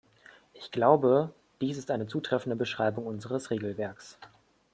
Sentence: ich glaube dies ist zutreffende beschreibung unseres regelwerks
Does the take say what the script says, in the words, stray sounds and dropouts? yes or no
no